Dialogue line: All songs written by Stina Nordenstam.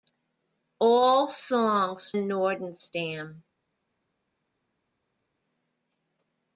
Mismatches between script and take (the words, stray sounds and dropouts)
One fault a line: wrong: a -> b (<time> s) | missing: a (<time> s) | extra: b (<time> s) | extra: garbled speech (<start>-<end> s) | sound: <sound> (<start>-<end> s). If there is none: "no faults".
missing: written by Stina (2.1 s)